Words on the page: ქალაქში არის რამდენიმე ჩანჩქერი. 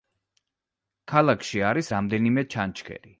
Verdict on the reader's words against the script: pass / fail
pass